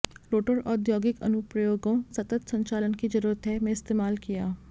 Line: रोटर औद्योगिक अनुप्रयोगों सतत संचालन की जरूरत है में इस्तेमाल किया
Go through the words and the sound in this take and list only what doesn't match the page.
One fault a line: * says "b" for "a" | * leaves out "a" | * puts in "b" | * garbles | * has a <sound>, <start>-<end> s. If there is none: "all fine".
all fine